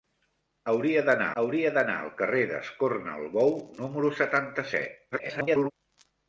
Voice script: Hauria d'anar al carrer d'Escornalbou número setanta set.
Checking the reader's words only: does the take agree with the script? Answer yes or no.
no